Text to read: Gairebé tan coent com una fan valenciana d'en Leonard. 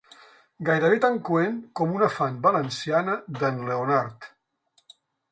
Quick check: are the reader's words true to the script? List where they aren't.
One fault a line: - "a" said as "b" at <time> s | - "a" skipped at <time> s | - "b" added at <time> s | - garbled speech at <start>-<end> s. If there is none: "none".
none